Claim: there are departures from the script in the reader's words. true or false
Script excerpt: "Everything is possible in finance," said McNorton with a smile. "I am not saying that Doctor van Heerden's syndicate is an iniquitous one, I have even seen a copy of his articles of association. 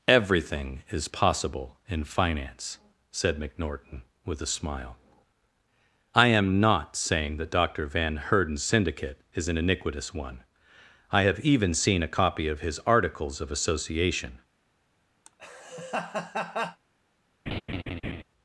false